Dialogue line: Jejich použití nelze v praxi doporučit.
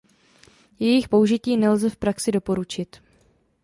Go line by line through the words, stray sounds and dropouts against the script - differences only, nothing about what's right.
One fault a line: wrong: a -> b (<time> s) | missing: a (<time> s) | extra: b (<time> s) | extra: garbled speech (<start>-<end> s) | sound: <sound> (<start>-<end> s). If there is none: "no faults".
no faults